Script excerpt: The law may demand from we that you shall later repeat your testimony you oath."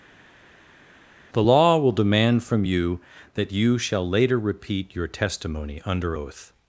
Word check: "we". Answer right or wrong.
wrong